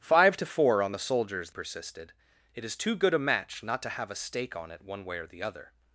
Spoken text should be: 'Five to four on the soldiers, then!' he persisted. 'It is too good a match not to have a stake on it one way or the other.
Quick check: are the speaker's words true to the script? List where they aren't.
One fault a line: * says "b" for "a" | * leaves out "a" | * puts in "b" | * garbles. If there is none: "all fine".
* leaves out "then he"